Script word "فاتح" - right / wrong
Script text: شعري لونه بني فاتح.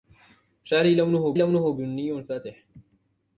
right